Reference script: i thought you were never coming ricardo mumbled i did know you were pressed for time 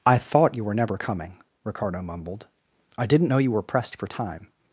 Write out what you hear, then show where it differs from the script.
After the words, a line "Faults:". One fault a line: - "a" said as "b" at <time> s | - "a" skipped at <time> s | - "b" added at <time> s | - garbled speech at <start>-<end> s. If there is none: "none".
i thought you were never coming ricardo mumbled i didn't know you were pressed for time
Faults:
- "did" said as "didn't" at 3.1 s